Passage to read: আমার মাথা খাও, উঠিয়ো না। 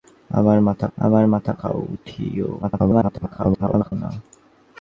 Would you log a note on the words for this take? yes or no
yes